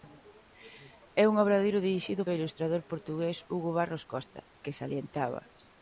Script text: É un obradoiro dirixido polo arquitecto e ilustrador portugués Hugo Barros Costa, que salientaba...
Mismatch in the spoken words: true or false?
true